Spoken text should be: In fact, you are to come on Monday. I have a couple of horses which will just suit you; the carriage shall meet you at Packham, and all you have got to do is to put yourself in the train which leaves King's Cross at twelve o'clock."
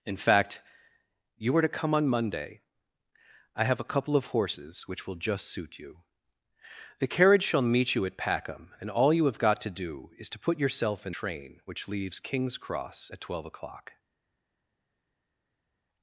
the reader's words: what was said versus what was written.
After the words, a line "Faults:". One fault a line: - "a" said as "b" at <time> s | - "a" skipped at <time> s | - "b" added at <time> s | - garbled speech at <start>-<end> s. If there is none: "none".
In fact, you are to come on Monday. I have a couple of horses which will just suit you; the carriage shall meet you at Packham, and all you have got to do is to put yourself in train which leaves King's Cross at twelve o'clock."
Faults:
- "the" skipped at 11.1 s